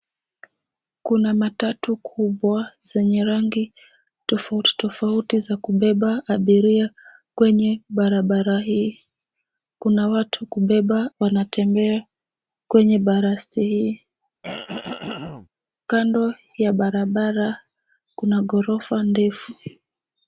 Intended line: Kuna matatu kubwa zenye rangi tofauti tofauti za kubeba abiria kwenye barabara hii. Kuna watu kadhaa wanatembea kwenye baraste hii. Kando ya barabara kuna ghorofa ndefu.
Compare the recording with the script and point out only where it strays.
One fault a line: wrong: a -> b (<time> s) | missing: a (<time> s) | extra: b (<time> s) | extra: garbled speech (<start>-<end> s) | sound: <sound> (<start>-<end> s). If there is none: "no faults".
wrong: kadhaa -> kubeba (10.4 s)
sound: throat clearing (14.4-15.5 s)